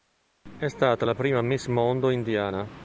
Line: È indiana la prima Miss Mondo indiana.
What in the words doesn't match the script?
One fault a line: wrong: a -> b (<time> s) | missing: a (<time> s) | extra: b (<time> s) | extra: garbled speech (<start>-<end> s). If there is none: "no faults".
wrong: indiana -> stata (0.7 s)